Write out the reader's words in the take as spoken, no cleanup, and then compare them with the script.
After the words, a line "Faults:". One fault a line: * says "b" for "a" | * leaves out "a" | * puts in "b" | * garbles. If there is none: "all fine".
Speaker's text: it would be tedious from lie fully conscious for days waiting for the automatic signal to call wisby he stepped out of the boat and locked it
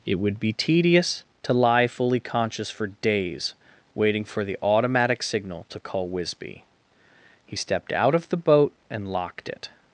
it would be tedious to lie fully conscious for days waiting for the automatic signal to call wisby he stepped out of the boat and locked it
Faults:
* says "to" for "from"